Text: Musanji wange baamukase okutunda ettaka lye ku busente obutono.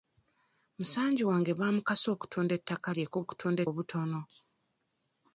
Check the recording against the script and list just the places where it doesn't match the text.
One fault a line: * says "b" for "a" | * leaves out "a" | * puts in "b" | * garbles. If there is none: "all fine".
* says "okutunda" for "busente"